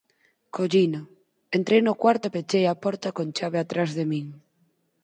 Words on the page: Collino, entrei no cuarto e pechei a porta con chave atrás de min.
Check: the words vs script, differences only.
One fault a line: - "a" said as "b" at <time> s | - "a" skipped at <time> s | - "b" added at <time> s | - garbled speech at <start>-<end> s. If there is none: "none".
none